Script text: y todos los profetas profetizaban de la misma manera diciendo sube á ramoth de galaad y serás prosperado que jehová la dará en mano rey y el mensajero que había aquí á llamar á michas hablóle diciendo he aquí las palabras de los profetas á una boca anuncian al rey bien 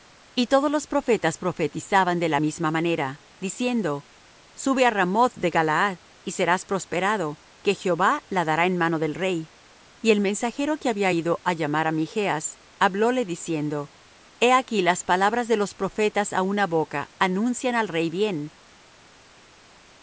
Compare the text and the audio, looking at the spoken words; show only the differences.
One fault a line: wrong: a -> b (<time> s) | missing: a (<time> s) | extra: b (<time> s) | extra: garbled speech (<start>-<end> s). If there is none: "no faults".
extra: del (9.0 s)
wrong: aquí -> ido (11.1 s)